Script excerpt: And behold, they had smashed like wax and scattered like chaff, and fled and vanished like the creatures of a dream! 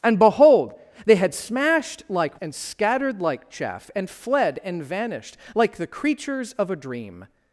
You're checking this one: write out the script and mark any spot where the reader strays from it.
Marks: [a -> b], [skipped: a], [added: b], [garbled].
And behold, they had smashed like [skipped: wax] and scattered like chaff, and fled and vanished like the creatures of a dream!